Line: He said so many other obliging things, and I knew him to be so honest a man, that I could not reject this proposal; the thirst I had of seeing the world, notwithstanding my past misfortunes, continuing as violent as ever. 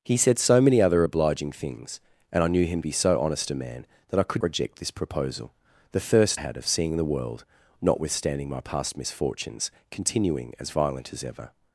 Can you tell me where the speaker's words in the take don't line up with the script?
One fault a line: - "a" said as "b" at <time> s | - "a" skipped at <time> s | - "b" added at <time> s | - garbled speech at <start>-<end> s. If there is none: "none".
- "to" skipped at 2.8 s
- "not" skipped at 4.4 s
- "I" skipped at 6.4 s